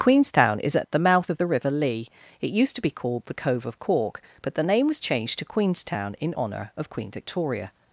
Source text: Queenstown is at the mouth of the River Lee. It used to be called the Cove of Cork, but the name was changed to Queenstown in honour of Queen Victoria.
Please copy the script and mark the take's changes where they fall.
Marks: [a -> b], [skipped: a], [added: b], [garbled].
Queenstown is at the mouth of the River Lee. It used to be called the Cove of Cork, but the name was changed to Queenstown in honour of Queen Victoria.